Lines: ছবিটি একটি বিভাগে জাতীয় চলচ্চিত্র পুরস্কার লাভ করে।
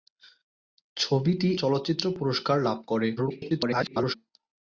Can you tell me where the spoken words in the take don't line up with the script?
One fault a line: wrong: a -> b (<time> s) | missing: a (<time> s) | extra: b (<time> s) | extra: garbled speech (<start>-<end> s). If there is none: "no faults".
missing: একটি বিভাগে জাতীয় (1.5 s)
extra: garbled speech (3.2-4.2 s)